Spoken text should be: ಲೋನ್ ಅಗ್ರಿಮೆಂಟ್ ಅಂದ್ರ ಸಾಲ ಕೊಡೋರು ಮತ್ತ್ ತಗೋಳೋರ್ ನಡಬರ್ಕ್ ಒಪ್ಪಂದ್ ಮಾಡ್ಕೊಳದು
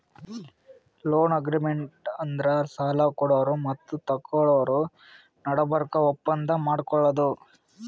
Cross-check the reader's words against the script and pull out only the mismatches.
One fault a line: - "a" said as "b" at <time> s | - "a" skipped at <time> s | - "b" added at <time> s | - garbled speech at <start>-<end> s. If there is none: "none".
none